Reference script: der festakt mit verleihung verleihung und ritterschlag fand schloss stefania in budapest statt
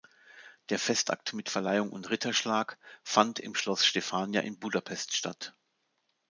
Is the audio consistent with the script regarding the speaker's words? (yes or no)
no